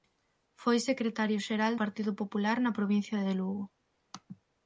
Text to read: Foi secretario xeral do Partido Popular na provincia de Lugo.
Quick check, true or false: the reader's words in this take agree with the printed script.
false